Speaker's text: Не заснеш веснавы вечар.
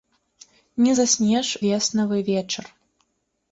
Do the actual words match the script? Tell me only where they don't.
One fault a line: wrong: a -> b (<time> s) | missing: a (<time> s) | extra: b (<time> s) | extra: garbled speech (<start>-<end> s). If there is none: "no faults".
no faults